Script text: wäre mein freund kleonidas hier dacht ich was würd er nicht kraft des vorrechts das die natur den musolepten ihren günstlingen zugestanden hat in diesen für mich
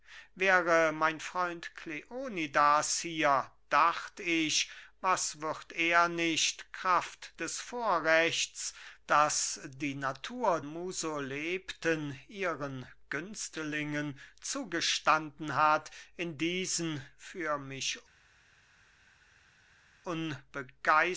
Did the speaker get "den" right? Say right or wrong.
wrong